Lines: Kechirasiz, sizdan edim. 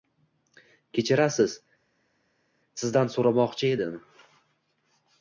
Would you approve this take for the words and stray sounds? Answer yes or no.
no